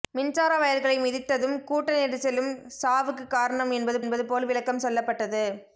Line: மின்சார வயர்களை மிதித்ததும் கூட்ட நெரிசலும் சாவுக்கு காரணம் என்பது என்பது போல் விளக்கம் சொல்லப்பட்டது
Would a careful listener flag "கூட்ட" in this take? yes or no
no